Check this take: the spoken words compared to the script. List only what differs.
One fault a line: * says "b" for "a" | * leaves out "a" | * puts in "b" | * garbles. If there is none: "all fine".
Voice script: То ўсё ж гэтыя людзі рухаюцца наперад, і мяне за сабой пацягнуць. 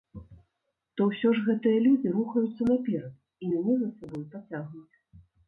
all fine